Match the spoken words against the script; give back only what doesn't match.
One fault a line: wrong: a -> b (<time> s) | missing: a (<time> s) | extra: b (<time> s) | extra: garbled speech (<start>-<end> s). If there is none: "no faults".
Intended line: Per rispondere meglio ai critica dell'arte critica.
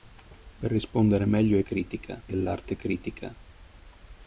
no faults